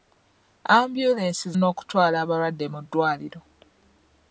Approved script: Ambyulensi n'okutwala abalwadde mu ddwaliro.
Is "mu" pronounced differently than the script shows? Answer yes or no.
no